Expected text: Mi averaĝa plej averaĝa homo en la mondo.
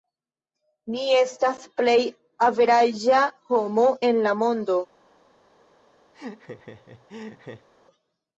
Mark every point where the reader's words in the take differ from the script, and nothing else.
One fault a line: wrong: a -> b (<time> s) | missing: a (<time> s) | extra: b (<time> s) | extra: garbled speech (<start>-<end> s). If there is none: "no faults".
wrong: averaĝa -> estas (1.2 s)